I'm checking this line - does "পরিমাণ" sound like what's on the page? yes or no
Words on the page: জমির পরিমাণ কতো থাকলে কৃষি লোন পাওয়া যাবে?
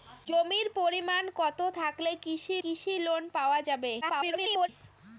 yes